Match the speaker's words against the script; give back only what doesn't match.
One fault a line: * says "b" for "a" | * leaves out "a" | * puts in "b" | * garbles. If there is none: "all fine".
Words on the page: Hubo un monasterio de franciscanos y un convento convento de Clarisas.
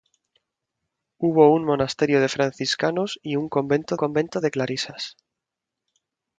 all fine